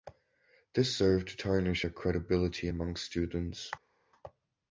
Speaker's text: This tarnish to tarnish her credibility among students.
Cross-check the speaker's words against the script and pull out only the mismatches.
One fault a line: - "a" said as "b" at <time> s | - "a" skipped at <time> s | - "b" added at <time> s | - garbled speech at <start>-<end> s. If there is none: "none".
- "tarnish" said as "served" at 0.9 s